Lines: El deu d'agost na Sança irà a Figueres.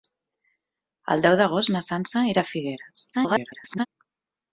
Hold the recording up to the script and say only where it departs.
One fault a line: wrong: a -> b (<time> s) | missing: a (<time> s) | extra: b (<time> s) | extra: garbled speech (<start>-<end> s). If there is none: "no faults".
extra: garbled speech (3.1-3.9 s)